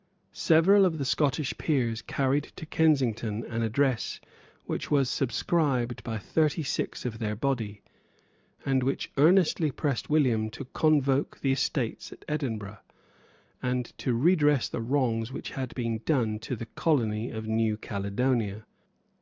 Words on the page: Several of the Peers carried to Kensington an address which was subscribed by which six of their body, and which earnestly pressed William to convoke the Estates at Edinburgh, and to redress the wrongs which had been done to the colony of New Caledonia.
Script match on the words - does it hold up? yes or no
no